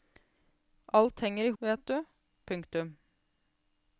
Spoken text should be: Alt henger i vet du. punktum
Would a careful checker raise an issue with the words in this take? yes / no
no